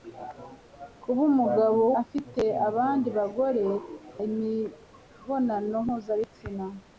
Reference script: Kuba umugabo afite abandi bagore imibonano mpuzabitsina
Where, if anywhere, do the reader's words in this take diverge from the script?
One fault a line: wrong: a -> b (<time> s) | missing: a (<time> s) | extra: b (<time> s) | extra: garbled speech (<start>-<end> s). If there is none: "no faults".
no faults